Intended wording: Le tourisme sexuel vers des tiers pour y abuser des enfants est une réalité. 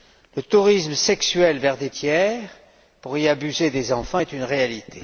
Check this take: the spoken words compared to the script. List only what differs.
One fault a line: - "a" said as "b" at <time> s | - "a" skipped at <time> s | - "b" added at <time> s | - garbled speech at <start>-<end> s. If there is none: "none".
none